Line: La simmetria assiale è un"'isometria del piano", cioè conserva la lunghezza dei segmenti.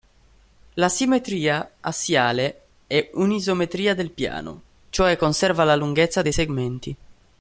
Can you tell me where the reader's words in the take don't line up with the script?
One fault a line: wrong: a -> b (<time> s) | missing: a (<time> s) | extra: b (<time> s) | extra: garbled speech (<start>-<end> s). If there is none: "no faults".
no faults